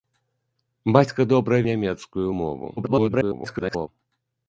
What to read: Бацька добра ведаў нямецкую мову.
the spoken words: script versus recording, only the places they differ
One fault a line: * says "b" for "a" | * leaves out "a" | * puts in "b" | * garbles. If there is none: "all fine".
* leaves out "ведаў"
* garbles